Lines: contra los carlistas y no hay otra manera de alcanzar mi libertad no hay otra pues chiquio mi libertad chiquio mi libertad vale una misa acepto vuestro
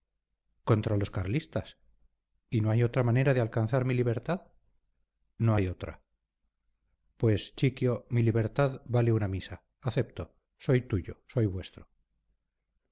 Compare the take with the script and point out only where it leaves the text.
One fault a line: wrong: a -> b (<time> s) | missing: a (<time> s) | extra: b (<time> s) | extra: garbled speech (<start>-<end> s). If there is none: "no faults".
missing: chiquio mi libertad (8.8 s)
extra: soy tuyo soy (10.6 s)